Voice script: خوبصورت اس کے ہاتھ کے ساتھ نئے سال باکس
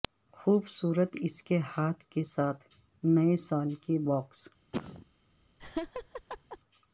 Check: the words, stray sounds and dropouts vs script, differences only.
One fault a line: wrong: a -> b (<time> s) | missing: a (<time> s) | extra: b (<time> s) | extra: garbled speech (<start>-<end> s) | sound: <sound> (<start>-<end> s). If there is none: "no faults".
extra: کے (3.8 s)
sound: cough (4.7-5.1 s)
sound: laugh (5.6-6.6 s)